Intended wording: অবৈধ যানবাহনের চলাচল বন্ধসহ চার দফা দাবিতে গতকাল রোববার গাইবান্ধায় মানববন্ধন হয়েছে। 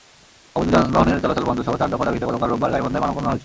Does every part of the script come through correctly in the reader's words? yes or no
yes